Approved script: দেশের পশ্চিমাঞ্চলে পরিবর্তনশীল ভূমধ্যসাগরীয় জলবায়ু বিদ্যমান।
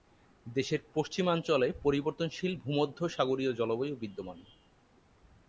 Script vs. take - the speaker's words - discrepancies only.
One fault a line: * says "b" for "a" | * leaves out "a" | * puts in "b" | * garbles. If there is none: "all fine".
all fine